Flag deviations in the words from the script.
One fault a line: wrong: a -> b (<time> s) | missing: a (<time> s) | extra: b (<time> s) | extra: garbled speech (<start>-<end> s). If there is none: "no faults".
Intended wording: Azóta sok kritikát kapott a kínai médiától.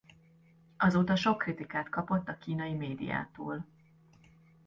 no faults